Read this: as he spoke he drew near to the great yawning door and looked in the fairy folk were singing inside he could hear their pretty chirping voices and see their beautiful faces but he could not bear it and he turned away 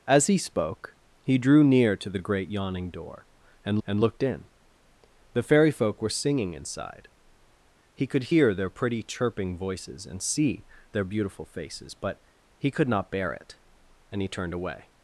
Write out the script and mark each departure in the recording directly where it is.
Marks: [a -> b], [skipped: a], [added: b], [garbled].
as he spoke he drew near to the great yawning door and [added: and] looked in the fairy folk were singing inside he could hear their pretty chirping voices and see their beautiful faces but he could not bear it and he turned away